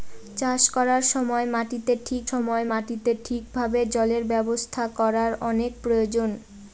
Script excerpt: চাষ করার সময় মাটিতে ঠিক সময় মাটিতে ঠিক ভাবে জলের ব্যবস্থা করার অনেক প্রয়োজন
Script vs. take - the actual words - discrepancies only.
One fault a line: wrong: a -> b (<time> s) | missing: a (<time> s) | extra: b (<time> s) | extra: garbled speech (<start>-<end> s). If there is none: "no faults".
no faults